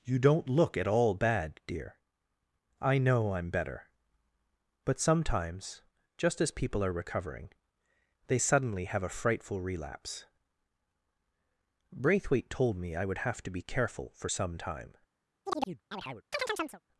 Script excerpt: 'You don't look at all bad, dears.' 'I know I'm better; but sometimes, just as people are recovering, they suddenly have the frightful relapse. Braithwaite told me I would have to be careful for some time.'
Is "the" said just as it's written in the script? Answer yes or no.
no